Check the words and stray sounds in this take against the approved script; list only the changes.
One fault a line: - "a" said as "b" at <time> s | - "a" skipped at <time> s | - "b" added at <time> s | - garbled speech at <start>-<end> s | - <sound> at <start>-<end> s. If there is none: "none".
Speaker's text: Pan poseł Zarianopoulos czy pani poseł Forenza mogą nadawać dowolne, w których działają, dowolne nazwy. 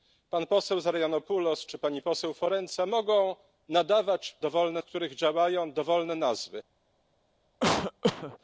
- cough at 7.6-8.4 s